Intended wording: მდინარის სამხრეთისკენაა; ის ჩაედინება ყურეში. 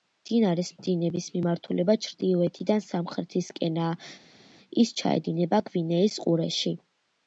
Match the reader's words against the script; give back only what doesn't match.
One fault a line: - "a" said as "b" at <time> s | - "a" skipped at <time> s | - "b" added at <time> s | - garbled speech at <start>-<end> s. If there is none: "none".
- "დინების მიმართულება ჩრდილოეთიდან" added at 0.8 s
- "გვინეის" added at 5.7 s